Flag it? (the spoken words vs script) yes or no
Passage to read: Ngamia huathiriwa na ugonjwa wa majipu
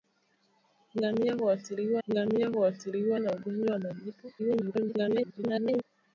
yes